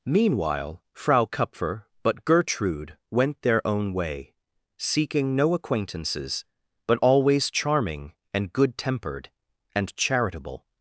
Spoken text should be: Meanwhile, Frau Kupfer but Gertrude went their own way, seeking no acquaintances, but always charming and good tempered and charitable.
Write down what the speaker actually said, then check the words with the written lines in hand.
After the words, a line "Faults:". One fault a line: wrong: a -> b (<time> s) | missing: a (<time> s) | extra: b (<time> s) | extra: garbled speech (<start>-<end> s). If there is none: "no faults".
Meanwhile, Frau Kupfer but Gertrude went their own way, seeking no acquaintances, but always charming and good tempered and charitable.
Faults:
no faults